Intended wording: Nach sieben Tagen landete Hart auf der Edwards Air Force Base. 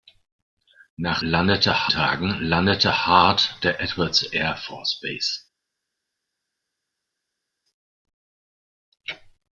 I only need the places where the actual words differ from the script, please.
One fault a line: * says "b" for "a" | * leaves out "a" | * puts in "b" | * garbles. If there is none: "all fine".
* says "landete" for "sieben"
* leaves out "auf"